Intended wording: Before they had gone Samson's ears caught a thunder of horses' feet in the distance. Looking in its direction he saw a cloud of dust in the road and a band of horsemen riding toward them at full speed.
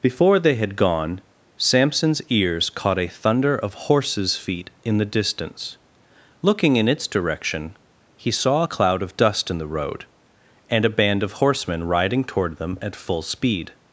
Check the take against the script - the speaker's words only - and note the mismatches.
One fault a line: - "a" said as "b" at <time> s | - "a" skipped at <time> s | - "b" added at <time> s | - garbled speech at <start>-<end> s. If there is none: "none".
none